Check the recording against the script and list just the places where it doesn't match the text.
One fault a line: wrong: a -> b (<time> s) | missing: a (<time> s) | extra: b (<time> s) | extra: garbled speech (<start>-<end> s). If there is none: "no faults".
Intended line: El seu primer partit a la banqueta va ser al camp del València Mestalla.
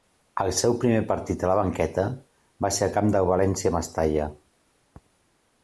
no faults